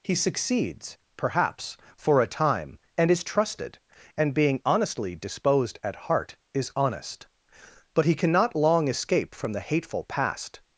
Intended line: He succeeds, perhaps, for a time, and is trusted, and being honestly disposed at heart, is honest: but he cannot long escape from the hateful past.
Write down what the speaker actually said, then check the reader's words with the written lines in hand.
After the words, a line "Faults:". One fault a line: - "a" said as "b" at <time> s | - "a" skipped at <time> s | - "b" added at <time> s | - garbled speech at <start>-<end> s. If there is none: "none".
He succeeds, perhaps, for a time, and is trusted, and being honestly disposed at heart, is honest: but he cannot long escape from the hateful past.
Faults:
none